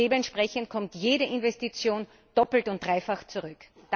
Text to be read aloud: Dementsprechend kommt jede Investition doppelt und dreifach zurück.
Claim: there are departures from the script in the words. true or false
false